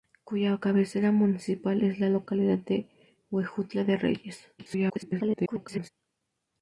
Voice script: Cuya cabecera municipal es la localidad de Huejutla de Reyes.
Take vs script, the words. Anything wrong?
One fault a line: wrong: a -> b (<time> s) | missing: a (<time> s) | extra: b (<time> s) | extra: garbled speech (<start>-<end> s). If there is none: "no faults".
extra: garbled speech (4.6-5.9 s)